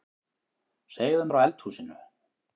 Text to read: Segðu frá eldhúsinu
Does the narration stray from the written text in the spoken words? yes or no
no